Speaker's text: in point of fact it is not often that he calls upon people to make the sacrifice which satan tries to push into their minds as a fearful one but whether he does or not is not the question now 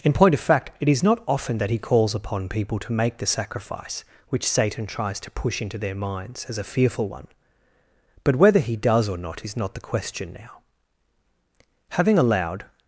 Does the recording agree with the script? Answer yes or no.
no